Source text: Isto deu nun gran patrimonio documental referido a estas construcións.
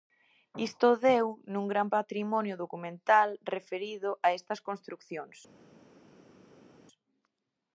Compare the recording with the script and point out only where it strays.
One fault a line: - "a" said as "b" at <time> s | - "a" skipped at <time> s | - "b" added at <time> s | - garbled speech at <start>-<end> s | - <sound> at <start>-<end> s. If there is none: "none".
none